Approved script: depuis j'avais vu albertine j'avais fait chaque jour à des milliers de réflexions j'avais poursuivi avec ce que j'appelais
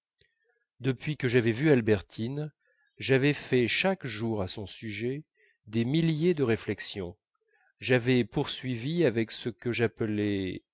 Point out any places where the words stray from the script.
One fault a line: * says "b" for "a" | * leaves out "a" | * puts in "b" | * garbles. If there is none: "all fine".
* puts in "que"
* puts in "son sujet"